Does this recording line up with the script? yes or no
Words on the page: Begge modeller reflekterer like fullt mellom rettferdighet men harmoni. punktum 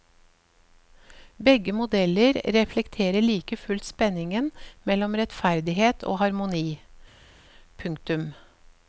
no